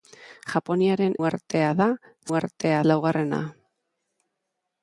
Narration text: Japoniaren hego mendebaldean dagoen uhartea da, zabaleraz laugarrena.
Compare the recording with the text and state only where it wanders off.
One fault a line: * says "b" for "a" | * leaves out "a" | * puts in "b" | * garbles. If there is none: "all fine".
* leaves out "hego mendebaldean dagoen"
* says "uhartea" for "zabaleraz"